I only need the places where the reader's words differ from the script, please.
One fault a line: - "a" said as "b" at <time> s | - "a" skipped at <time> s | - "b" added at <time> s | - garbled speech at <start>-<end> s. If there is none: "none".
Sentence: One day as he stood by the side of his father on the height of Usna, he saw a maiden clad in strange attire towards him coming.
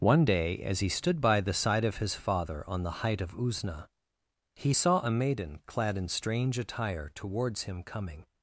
none